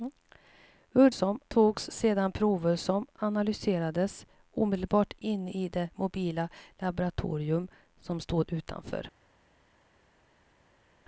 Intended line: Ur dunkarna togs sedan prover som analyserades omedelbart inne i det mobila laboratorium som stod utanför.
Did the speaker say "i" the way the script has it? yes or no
yes